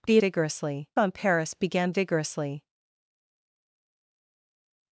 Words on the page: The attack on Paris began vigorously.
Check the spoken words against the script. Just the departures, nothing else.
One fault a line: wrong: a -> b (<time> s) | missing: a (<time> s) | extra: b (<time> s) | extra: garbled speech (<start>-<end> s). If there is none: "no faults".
wrong: attack -> vigorously (0.2 s)